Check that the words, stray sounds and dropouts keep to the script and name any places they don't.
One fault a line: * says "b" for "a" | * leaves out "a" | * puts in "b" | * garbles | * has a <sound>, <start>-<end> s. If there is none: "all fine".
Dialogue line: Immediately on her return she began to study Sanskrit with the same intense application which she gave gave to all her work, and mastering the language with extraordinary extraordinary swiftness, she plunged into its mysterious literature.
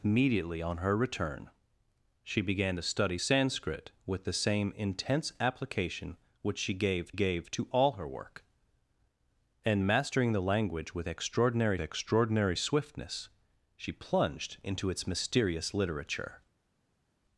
all fine